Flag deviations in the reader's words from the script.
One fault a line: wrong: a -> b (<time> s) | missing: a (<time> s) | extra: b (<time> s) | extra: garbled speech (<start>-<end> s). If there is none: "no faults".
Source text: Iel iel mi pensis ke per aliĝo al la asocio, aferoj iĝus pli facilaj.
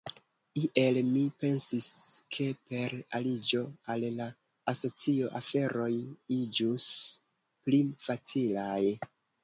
missing: iel (0.9 s)